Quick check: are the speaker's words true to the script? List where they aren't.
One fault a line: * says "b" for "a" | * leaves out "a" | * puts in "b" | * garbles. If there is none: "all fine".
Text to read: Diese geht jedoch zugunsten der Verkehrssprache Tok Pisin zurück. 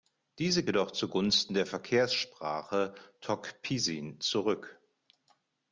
* leaves out "geht"